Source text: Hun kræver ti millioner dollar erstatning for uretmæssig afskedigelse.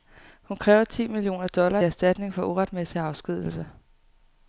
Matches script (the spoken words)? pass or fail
pass